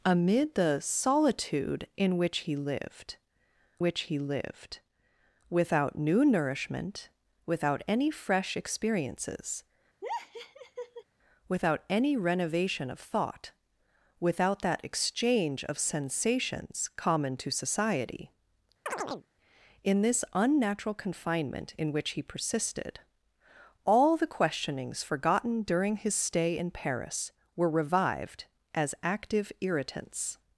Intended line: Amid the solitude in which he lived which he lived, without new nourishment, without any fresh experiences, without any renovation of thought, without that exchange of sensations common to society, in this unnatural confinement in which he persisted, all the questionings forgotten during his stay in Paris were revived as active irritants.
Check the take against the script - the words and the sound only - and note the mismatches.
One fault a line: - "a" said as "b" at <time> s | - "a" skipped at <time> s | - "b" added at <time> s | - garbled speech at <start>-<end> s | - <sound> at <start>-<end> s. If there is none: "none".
- laugh at 10.0-11.0 s
- chirp at 18.9-19.3 s